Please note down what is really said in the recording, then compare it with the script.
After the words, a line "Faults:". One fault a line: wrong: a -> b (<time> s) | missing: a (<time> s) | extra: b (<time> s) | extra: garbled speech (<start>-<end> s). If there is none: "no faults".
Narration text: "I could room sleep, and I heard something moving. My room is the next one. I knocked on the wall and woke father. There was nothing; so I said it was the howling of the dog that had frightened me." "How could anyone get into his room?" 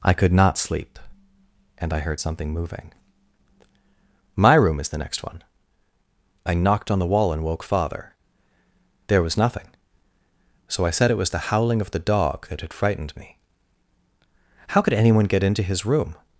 "I could not sleep, and I heard something moving. My room is the next one. I knocked on the wall and woke father. There was nothing; so I said it was the howling of the dog that had frightened me." "How could anyone get into his room?"
Faults:
wrong: room -> not (0.3 s)